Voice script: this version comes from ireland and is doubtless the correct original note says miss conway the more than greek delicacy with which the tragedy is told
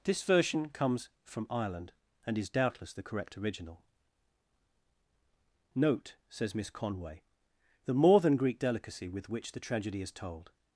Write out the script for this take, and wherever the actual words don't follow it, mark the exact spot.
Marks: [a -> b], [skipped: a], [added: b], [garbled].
this version comes from ireland and is doubtless the correct original note says miss conway the more than greek delicacy with which the tragedy is told